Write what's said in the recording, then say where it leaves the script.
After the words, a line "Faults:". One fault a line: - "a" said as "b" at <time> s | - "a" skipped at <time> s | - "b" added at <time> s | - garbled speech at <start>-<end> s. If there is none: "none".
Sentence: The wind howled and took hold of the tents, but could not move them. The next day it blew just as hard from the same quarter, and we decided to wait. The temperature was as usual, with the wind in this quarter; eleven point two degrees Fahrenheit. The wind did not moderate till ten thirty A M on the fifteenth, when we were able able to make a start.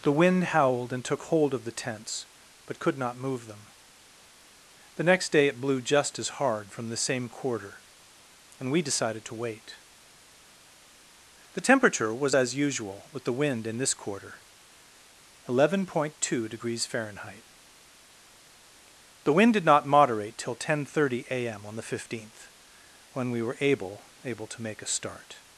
The wind howled and took hold of the tents, but could not move them. The next day it blew just as hard from the same quarter, and we decided to wait. The temperature was as usual, with the wind in this quarter; eleven point two degrees Fahrenheit. The wind did not moderate till ten thirty A M on the fifteenth, when we were able able to make a start.
Faults:
none